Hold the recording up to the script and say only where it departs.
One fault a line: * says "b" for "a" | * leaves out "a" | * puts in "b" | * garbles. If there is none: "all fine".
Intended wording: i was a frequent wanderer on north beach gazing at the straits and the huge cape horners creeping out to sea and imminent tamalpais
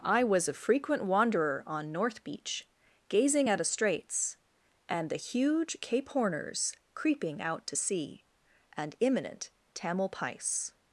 * says "a" for "the"